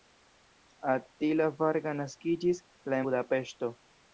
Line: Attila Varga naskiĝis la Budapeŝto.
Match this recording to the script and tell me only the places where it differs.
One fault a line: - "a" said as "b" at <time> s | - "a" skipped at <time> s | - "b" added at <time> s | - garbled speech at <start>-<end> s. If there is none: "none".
none